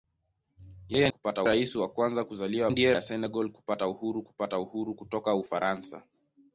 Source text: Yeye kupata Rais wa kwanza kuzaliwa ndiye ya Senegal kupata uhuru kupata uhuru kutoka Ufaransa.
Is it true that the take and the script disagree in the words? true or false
false